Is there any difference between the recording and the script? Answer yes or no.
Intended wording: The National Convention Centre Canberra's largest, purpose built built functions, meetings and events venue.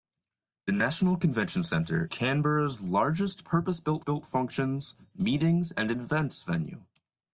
no